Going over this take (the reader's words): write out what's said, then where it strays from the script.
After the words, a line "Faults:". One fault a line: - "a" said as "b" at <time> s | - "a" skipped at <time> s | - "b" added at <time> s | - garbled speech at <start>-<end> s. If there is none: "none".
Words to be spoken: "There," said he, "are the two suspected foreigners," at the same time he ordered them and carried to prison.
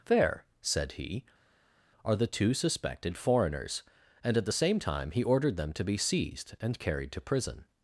"There," said he, "are the two suspected foreigners," and at the same time he ordered them to be seized and carried to prison.
Faults:
- "and" added at 4.2 s
- "to be seized" added at 5.7 s